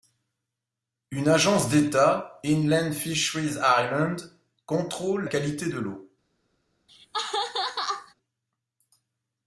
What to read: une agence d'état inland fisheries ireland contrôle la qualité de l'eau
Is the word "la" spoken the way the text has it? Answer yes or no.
no